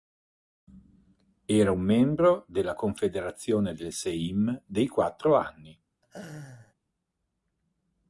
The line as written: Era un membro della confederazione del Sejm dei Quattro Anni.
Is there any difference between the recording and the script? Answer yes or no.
no